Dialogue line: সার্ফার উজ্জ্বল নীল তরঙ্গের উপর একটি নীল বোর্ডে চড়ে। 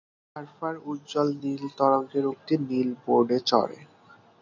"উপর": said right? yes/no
no